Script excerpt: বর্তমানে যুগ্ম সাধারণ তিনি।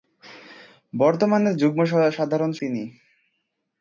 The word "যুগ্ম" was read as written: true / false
true